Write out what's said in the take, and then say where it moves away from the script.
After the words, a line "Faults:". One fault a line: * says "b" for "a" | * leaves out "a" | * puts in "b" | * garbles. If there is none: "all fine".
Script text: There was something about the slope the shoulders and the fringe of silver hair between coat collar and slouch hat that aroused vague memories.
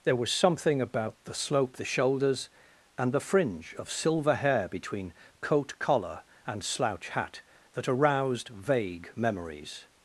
There was something about the slope the shoulders and the fringe of silver hair between coat collar and slouch hat that aroused vague memories.
Faults:
all fine